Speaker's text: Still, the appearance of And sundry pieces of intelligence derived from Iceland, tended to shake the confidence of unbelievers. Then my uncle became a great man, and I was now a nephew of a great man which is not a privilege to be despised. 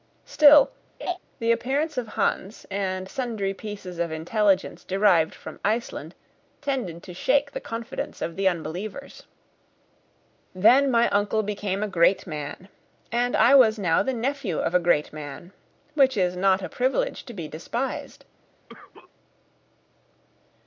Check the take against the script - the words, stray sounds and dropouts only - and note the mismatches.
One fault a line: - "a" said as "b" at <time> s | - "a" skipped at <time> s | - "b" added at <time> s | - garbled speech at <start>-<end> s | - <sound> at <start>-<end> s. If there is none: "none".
- laugh at 1.0-1.2 s
- "Hans" added at 2.1 s
- "the" added at 8.3 s
- "a" said as "the" at 14.0 s
- cough at 18.7-19.1 s